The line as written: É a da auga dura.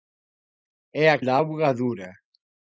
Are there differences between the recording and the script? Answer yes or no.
no